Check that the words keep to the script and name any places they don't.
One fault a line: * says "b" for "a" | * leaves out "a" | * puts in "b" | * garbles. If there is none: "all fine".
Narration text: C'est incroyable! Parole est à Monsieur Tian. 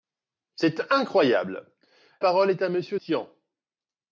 all fine